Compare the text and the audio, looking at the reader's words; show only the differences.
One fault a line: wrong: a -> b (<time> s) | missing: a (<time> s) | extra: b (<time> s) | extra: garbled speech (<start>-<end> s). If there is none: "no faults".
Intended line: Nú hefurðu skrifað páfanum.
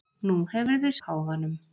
missing: skrifað (0.9 s)